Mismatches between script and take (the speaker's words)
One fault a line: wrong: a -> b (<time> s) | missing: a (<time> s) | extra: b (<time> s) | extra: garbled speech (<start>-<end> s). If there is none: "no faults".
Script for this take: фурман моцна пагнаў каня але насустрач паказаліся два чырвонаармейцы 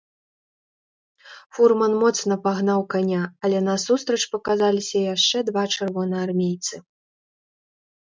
extra: яшчэ (5.2 s)